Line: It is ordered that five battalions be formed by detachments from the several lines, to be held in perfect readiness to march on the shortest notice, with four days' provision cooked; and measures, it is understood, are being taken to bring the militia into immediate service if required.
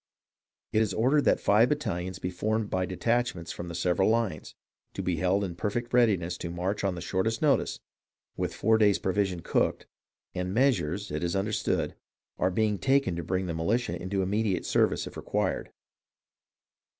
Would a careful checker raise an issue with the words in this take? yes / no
no